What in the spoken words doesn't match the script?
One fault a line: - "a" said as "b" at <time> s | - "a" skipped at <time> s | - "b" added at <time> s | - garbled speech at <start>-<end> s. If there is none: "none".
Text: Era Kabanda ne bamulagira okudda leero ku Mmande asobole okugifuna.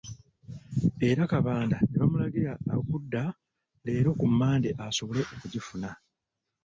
none